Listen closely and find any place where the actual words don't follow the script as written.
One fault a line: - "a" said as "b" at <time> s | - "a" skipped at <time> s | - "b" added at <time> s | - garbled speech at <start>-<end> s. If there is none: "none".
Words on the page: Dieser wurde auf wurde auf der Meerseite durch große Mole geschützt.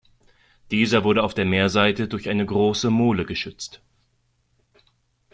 - "wurde auf" skipped at 1.3 s
- "eine" added at 2.3 s